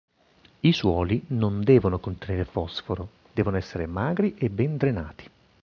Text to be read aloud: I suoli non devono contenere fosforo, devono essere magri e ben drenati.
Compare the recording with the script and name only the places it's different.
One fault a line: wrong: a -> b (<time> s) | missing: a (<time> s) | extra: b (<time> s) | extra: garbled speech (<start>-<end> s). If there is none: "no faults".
no faults